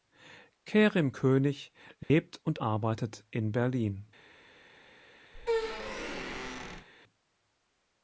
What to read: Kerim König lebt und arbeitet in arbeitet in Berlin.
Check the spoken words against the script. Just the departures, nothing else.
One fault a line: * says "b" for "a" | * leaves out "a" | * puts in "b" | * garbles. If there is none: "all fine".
* leaves out "arbeitet in"